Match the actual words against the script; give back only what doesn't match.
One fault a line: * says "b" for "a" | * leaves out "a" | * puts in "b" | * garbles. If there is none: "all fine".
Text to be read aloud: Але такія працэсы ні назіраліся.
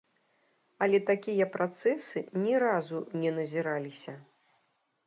* puts in "разу не"